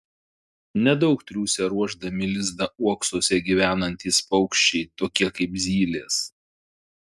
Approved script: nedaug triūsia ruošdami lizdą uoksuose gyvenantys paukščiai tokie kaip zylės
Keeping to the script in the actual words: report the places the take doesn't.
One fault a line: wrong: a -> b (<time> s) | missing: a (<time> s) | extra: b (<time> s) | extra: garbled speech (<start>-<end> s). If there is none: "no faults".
no faults